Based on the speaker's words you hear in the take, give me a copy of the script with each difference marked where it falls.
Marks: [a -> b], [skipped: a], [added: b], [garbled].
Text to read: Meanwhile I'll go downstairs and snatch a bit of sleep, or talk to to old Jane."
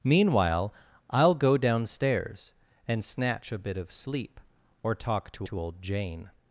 Meanwhile I'll go downstairs and snatch a bit of sleep, or talk to to old Jane."